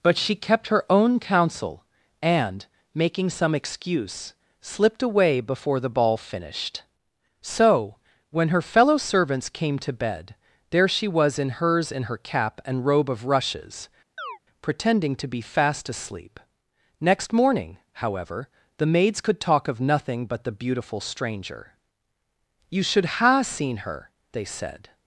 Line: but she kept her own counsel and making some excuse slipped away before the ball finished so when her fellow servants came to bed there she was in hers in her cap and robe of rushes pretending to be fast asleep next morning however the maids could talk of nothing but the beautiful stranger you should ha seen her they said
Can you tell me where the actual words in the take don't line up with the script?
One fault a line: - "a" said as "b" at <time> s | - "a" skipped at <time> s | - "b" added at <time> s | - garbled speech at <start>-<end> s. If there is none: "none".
none